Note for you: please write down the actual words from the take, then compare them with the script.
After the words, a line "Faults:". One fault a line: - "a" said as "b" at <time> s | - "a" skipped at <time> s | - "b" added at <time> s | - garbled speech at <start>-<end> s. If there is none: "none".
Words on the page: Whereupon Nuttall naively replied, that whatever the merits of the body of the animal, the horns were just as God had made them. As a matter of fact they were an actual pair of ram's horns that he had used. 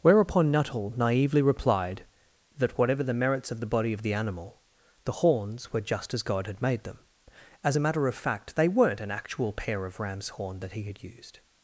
Whereupon Nuttall naively replied, that whatever the merits of the body of the animal, the horns were just as God had made them. As a matter of fact they weren't an actual pair of ram's horn that he had used.
Faults:
- "were" said as "weren't" at 8.7 s
- "horns" said as "horn" at 10.3 s